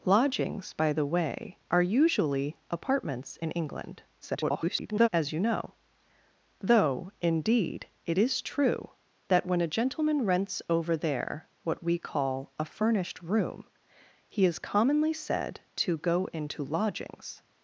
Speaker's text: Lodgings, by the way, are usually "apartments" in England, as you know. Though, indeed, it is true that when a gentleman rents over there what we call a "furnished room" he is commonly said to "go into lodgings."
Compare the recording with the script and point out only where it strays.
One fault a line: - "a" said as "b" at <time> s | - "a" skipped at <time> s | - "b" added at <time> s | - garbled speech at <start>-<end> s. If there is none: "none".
- garbled speech at 4.2-5.1 s